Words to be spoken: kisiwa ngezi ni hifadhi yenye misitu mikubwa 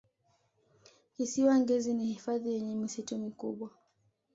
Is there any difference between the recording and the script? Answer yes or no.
no